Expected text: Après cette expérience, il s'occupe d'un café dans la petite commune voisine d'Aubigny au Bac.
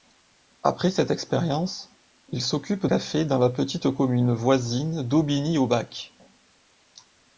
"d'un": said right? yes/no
no